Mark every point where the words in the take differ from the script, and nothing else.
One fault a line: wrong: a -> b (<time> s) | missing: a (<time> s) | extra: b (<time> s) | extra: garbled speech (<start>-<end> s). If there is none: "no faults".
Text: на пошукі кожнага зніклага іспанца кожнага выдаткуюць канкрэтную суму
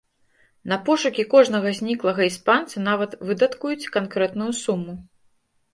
wrong: кожнага -> нават (2.9 s)